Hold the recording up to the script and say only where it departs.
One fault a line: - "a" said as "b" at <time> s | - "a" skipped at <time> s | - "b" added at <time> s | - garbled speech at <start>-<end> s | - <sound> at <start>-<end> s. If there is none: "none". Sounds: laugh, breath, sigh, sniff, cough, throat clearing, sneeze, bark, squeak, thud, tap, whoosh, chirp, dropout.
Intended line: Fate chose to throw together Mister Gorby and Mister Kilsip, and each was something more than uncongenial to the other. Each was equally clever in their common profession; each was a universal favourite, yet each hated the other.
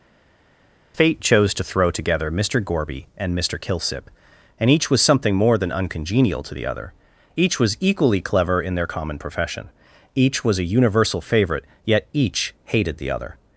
none